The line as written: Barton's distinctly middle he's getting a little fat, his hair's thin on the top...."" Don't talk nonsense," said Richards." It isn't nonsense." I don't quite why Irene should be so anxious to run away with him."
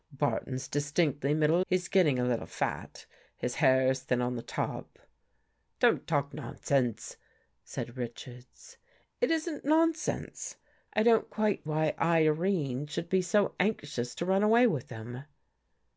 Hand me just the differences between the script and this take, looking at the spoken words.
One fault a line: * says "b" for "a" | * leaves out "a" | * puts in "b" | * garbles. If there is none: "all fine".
all fine